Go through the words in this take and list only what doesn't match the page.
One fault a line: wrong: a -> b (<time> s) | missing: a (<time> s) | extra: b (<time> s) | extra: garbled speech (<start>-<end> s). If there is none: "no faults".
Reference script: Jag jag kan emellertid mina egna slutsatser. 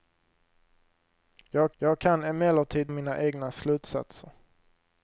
no faults